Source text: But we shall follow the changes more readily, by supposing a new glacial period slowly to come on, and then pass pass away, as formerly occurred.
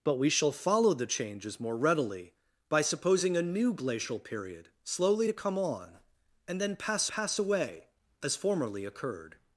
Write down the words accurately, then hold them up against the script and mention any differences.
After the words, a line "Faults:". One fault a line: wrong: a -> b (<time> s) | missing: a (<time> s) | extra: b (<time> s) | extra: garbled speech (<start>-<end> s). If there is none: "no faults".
But we shall follow the changes more readily, by supposing a new glacial period slowly to come on, and then pass pass away, as formerly occurred.
Faults:
no faults